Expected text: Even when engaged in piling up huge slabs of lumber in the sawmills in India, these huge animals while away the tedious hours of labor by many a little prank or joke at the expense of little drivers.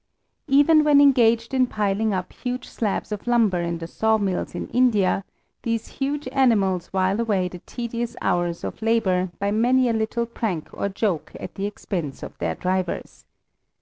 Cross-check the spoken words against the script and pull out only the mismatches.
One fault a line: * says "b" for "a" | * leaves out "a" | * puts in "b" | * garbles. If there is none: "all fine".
* says "their" for "little"